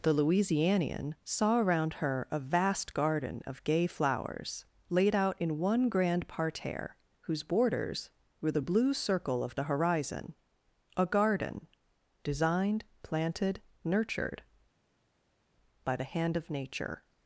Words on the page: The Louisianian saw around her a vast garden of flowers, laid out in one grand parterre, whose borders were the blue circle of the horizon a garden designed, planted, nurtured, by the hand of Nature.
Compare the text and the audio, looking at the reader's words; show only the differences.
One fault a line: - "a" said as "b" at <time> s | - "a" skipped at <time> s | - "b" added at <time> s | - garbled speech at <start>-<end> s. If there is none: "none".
- "gay" added at 3.6 s